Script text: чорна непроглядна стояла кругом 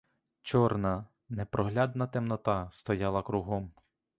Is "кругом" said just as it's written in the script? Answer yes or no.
yes